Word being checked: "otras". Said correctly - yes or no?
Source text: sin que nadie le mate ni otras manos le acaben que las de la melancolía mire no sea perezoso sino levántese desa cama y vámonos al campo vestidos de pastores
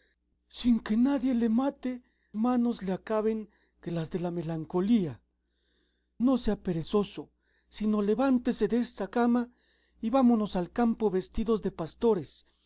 no